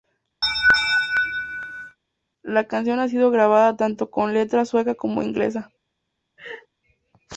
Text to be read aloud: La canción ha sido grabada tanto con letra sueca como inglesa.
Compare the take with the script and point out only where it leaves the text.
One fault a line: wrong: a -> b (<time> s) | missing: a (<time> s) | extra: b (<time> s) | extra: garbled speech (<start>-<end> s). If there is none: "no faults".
no faults